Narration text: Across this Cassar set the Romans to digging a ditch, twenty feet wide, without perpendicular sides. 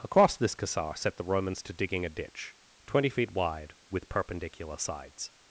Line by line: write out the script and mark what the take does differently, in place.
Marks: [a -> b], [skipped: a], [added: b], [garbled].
Across this Cassar set the Romans to digging a ditch, twenty feet wide, [without -> with] perpendicular sides.